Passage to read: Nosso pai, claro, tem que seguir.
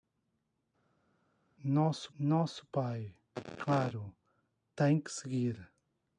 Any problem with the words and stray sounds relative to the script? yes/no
yes